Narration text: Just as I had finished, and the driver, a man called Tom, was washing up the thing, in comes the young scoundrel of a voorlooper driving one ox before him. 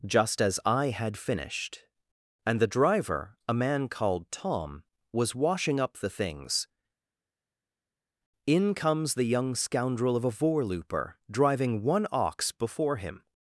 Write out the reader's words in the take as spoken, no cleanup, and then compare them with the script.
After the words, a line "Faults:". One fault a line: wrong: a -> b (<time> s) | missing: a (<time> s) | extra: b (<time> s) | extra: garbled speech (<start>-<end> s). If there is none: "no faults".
Just as I had finished, and the driver, a man called Tom, was washing up the things, in comes the young scoundrel of a voorlooper driving one ox before him.
Faults:
wrong: thing -> things (6.1 s)